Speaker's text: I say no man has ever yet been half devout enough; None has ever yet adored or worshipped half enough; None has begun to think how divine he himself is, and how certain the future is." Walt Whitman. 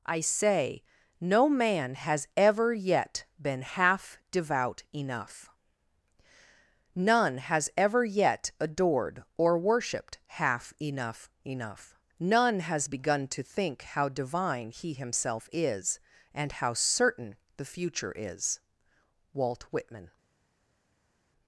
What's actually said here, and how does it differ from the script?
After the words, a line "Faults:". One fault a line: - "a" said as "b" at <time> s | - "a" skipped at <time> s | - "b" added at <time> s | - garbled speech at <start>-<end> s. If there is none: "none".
I say no man has ever yet been half devout enough; None has ever yet adored or worshipped half enough; enough None has begun to think how divine he himself is, and how certain the future is." Walt Whitman.
Faults:
- "enough" added at 11.4 s